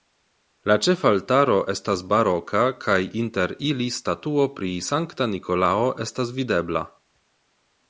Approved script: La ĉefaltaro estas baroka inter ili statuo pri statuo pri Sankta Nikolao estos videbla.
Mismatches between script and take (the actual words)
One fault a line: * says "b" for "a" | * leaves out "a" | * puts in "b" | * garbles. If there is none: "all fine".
* puts in "kaj"
* leaves out "statuo pri"
* says "estas" for "estos"